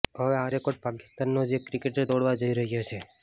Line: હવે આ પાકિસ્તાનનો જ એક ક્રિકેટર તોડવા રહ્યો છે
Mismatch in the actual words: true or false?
true